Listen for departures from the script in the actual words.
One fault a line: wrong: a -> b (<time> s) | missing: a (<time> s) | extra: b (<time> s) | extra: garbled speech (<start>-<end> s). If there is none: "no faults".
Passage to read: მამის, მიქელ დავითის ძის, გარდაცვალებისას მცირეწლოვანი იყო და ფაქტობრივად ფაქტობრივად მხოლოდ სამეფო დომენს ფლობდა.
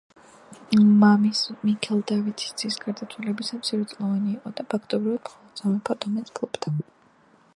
missing: ფაქტობრივად (5.3 s)